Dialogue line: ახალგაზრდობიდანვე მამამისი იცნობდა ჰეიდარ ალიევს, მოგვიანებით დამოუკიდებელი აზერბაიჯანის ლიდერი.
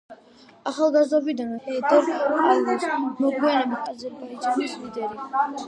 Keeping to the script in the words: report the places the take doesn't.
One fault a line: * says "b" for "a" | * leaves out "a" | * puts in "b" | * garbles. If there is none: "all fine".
* leaves out "მამამისი იცნობდა"
* leaves out "დამოუკიდებელი"